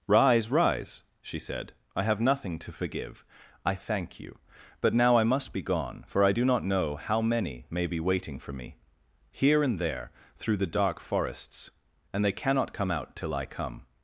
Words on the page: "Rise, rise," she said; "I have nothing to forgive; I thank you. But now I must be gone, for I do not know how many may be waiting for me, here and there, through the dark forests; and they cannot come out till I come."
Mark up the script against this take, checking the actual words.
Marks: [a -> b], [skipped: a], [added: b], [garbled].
"Rise, rise," she said; "I have nothing to forgive; I thank you. But now I must be gone, for I do not know how many may be waiting for me, here and there, through the dark forests; and they cannot come out till I come."